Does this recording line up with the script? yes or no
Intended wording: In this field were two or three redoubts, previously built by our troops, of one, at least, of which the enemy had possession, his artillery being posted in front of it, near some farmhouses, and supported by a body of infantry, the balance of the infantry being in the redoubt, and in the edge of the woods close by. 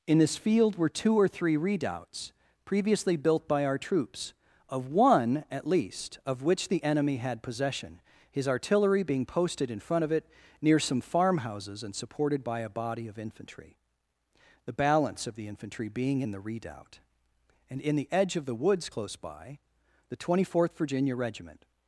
no